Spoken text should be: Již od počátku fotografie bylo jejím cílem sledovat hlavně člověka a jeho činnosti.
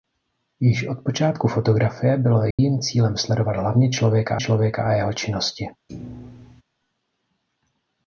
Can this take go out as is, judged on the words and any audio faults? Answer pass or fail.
fail